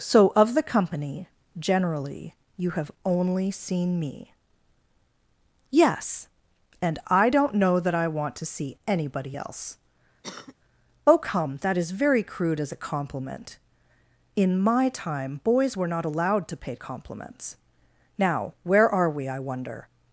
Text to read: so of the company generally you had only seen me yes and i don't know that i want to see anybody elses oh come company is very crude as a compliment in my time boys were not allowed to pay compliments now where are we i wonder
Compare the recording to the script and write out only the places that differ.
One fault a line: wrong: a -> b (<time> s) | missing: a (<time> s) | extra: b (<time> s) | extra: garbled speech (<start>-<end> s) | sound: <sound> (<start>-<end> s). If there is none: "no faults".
wrong: had -> have (2.7 s)
wrong: elses -> else (9.4 s)
sound: cough (10.2-10.5 s)
wrong: company -> that (11.6 s)